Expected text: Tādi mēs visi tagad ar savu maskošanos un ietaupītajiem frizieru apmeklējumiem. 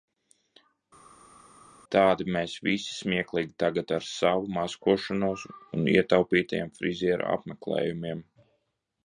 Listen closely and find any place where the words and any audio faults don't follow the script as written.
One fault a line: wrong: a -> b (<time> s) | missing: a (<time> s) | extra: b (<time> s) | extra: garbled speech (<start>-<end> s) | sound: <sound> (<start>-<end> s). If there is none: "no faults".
extra: smieklīgi (2.9 s)